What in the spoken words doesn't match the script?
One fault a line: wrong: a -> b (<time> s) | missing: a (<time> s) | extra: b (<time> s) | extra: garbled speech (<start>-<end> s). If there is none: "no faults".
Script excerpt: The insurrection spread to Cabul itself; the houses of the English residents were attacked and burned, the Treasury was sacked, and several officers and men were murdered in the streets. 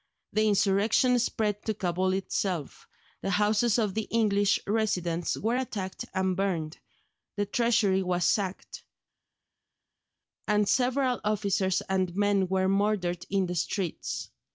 no faults